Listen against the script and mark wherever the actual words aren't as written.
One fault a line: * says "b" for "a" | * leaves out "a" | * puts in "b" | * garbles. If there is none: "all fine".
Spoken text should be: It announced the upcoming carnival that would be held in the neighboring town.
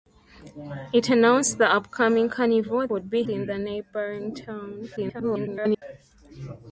* leaves out "that"
* leaves out "held"
* garbles